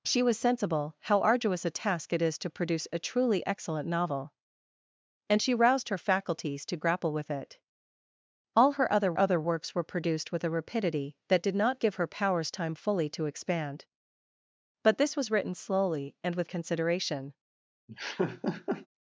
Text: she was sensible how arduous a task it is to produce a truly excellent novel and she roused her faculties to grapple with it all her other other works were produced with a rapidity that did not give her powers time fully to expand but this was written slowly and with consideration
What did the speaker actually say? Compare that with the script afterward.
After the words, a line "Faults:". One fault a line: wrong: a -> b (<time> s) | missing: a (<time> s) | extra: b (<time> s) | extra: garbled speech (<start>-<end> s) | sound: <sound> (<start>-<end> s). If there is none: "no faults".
she was sensible how arduous a task it is to produce a truly excellent novel and she roused her faculties to grapple with it all her other other works were produced with a rapidity that did not give her powers time fully to expand but this was written slowly and with consideration
Faults:
sound: laugh (17.9-18.9 s)